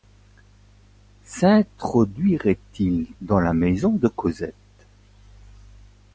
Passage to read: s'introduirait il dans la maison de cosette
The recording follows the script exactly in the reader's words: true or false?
true